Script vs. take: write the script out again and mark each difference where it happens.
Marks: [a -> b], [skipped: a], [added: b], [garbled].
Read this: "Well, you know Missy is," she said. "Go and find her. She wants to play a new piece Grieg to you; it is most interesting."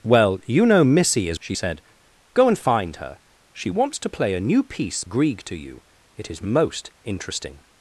"Well, you know Missy is," she said. "Go and find her. She wants to play a new piece Grieg to you; it is most interesting."